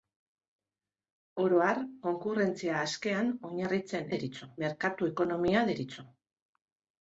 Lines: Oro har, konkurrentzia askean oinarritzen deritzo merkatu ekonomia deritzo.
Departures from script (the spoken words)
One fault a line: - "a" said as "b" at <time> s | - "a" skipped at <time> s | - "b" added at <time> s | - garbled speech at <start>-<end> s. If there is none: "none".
none